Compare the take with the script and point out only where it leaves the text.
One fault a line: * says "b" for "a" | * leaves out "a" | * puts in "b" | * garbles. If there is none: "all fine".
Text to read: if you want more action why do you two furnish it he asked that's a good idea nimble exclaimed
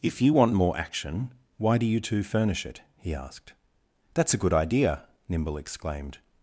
all fine